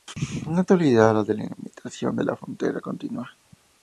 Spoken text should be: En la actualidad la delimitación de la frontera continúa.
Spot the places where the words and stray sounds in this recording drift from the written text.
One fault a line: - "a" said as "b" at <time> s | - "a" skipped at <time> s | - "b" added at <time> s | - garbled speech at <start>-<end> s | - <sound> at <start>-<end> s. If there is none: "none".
none